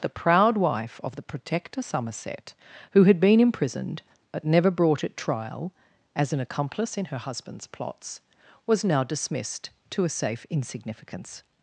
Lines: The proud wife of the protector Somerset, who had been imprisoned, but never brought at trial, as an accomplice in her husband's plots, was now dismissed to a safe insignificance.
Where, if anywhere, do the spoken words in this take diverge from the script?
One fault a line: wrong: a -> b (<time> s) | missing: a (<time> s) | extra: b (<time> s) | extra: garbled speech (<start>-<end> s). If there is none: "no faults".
no faults